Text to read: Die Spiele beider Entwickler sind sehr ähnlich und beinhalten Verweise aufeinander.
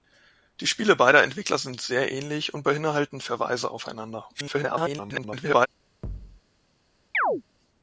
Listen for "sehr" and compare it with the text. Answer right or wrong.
right